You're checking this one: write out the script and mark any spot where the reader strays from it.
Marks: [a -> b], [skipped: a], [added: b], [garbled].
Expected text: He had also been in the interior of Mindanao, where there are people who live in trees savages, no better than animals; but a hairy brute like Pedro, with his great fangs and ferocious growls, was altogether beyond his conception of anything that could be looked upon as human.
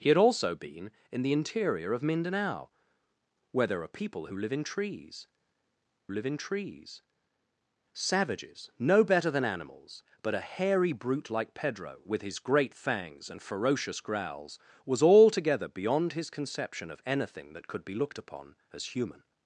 He had also been in the interior of Mindanao, where there are people who live in trees [added: live in trees] savages, no better than animals; but a hairy brute like Pedro, with his great fangs and ferocious growls, was altogether beyond his conception of anything that could be looked upon as human.